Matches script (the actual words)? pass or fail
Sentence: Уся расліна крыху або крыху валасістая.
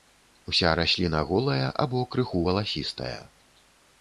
fail